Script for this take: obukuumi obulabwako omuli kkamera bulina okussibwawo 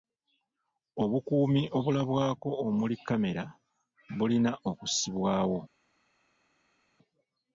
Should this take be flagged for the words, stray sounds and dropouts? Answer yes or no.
no